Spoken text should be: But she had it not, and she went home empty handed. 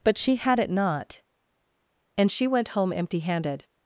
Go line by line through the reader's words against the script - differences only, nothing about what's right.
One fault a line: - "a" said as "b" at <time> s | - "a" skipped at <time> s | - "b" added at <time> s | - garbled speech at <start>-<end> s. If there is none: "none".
none